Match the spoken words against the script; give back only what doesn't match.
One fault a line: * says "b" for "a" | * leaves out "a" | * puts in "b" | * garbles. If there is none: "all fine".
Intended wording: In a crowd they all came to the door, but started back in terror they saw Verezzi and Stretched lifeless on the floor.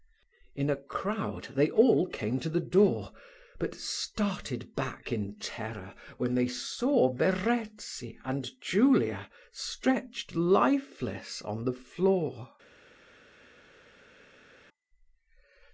* puts in "when"
* puts in "Julia"